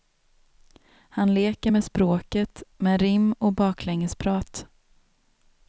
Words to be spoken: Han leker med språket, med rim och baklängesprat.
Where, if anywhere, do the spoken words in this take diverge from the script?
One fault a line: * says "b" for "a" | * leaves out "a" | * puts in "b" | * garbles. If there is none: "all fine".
all fine